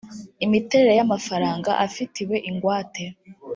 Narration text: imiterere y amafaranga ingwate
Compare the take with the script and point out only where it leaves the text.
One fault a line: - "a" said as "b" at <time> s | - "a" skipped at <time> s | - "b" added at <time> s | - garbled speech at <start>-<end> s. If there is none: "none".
- "afitiwe" added at 1.9 s